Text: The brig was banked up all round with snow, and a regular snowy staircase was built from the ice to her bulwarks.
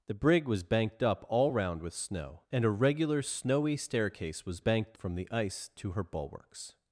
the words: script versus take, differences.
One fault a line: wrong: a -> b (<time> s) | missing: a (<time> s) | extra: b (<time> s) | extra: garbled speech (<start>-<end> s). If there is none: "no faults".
wrong: built -> banked (4.6 s)